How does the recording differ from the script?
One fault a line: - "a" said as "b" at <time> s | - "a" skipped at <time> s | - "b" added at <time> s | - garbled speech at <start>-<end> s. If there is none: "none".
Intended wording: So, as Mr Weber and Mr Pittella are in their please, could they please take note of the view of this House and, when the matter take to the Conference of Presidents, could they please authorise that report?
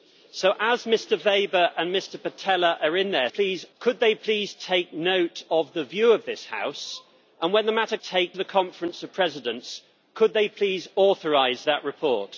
none